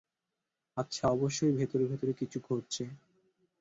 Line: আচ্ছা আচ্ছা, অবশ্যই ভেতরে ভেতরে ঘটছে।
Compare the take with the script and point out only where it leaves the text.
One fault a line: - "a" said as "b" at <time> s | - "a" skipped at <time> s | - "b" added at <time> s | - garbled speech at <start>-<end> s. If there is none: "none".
- "আচ্ছা" skipped at 1.1 s
- "কিছু" added at 2.1 s